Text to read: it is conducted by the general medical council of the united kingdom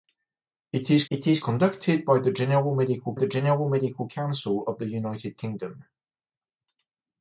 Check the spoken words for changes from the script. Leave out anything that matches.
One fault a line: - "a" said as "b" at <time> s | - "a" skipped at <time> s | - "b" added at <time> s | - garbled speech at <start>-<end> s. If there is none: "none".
- "it is" added at 1.1 s
- "the general medical" added at 3.1 s